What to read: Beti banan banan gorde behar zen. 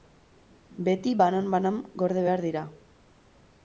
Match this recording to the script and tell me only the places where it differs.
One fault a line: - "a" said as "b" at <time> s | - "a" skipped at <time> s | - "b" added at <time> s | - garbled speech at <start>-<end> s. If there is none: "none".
- "zen" said as "dira" at 2.5 s